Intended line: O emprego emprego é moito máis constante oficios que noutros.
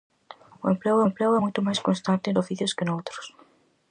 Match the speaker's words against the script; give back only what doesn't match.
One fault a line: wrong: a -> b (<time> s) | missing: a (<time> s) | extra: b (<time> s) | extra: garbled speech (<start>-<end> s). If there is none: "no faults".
no faults